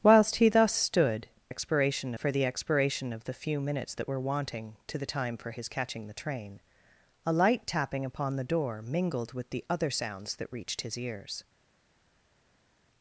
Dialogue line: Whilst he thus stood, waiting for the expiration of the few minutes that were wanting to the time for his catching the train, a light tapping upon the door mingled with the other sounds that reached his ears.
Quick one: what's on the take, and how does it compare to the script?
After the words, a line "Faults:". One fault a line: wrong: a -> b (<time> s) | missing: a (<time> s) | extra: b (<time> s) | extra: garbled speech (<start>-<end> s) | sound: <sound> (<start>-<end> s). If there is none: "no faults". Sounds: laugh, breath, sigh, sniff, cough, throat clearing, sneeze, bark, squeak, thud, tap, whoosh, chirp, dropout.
Whilst he thus stood, expiration for the expiration of the few minutes that were wanting to the time for his catching the train, a light tapping upon the door mingled with the other sounds that reached his ears.
Faults:
wrong: waiting -> expiration (1.5 s)